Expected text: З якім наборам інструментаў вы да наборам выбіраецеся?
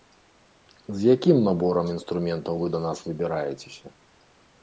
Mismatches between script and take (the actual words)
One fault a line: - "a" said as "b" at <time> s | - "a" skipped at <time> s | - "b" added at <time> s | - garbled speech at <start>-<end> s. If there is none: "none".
- "наборам" said as "нас" at 2.8 s